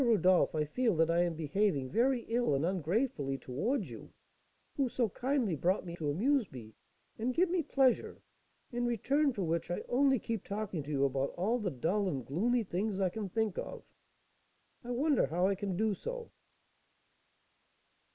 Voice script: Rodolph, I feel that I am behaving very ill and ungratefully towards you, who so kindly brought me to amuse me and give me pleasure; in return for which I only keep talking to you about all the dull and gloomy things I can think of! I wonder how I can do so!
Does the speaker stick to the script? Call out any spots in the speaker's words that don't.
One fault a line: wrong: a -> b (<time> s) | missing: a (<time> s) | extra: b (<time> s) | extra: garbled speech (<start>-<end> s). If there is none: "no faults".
no faults